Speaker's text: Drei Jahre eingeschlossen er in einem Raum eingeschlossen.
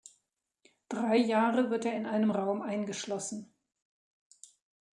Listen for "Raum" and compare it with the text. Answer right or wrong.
right